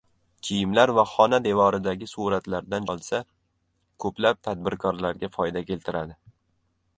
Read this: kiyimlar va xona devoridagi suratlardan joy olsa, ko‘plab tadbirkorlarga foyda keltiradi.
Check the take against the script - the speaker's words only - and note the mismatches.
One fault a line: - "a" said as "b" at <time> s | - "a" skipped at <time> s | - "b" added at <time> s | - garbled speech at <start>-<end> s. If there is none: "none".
- "joy" skipped at 2.9 s